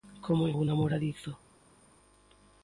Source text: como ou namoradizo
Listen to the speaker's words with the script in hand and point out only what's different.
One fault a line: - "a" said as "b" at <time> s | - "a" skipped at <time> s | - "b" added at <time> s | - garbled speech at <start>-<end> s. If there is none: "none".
none